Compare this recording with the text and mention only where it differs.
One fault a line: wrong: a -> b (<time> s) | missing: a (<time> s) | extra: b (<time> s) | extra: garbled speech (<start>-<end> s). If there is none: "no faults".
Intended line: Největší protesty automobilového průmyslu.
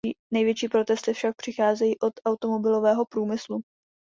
extra: však přicházejí od (1.1 s)